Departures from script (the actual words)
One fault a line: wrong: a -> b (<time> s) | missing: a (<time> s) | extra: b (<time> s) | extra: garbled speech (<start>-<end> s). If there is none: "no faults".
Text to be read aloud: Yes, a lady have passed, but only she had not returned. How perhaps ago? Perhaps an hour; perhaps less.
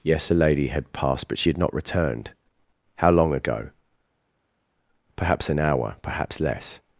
wrong: have -> had (0.7 s)
missing: only (1.4 s)
wrong: perhaps -> long (3.1 s)